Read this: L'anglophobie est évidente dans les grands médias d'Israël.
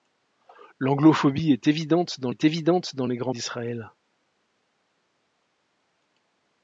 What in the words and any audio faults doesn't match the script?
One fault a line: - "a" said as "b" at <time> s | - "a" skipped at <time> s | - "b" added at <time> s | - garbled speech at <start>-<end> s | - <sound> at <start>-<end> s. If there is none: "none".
- "est évidente dans" added at 2.3 s
- "médias" skipped at 3.3 s